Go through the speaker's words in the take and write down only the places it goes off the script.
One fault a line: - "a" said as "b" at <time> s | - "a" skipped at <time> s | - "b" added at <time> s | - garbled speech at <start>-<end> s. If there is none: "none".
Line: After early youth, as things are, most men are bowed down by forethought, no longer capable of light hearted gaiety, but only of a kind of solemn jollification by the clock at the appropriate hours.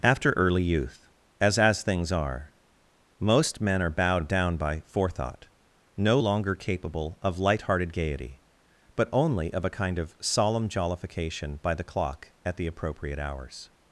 - "as" added at 1.6 s